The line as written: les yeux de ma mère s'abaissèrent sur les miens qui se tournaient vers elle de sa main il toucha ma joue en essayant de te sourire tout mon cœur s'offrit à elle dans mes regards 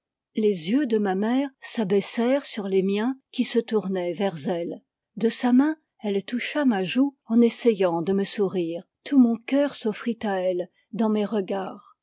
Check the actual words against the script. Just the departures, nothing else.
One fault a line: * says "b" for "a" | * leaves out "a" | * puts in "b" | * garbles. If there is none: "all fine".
* says "elle" for "il"
* says "me" for "te"